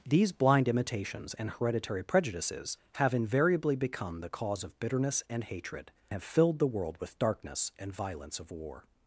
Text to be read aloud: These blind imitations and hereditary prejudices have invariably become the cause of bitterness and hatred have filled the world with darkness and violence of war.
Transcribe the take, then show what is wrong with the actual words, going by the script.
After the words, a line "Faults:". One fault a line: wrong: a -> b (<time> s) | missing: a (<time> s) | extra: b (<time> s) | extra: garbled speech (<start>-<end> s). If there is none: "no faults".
These blind imitations and hereditary prejudices have invariably become the cause of bitterness and hatred have filled the world with darkness and violence of war.
Faults:
no faults